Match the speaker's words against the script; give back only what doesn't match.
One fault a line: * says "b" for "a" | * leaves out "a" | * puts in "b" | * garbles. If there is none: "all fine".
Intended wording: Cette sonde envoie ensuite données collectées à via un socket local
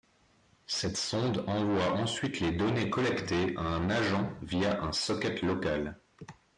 * puts in "les"
* puts in "un agent"